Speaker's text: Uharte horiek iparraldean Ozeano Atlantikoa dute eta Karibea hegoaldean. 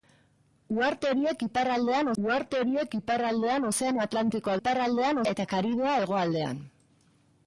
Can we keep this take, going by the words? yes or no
no